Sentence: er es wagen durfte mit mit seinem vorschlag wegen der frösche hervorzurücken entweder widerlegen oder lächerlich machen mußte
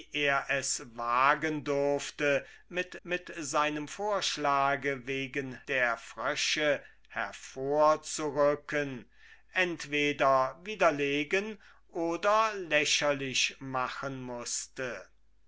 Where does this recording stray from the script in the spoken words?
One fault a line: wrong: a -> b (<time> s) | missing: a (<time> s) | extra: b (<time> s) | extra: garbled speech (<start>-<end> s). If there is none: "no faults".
no faults